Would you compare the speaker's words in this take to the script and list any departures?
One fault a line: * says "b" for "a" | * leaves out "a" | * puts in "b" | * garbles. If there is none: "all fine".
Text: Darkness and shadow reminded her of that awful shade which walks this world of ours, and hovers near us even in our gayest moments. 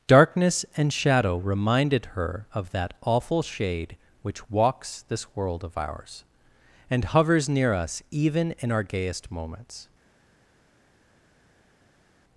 all fine